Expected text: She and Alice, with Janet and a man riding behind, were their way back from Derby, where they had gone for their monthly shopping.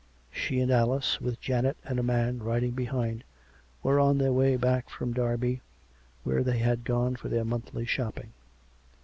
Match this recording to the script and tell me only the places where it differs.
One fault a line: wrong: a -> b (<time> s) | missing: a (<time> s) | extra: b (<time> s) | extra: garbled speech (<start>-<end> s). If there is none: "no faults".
extra: on (4.0 s)